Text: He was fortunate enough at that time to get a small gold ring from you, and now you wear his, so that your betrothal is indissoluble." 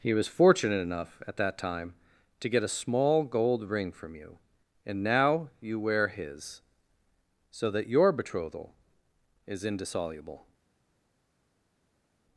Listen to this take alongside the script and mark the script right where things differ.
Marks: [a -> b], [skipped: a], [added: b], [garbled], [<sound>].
He was fortunate enough at that time to get a small gold ring from you, and now you wear his, so that your betrothal is indissoluble."